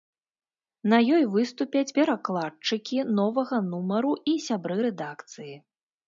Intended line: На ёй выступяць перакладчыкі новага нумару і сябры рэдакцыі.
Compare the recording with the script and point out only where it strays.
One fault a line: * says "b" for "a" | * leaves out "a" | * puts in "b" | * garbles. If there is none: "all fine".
all fine